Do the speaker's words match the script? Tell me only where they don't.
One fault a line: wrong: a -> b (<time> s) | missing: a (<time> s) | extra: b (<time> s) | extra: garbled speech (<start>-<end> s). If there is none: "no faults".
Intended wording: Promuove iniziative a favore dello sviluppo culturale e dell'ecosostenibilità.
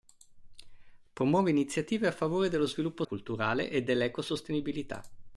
no faults